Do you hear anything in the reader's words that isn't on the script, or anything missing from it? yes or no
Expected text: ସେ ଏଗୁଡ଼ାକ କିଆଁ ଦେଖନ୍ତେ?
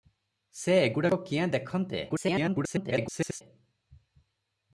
yes